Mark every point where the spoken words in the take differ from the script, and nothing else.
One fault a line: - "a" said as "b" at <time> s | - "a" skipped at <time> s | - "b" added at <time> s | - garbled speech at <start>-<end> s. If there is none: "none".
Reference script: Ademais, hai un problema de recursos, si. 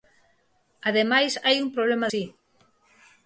- "de recursos" skipped at 2.1 s